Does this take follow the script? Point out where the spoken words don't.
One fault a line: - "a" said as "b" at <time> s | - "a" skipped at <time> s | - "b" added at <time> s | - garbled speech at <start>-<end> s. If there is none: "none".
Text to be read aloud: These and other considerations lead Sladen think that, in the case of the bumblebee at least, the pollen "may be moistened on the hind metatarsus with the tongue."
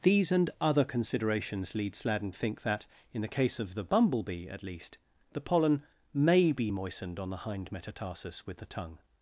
none